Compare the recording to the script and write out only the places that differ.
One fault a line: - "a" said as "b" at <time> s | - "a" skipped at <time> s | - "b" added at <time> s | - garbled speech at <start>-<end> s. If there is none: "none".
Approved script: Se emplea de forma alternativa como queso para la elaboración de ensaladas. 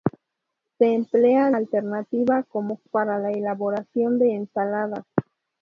- "de forma" skipped at 1.5 s
- "queso" skipped at 2.8 s